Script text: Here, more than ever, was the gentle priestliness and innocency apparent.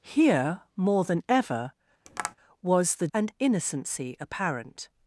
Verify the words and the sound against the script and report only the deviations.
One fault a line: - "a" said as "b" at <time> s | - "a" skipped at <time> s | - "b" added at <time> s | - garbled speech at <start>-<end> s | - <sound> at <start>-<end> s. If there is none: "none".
- tap at 2.1-2.4 s
- "gentle priestliness" skipped at 3.1 s